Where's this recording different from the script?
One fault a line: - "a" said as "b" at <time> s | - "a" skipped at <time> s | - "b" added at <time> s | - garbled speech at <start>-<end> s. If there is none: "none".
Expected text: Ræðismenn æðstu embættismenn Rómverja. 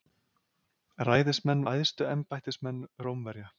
none